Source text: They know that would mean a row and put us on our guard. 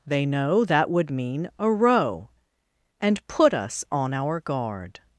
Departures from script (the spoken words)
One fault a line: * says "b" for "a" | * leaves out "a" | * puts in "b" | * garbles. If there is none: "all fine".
all fine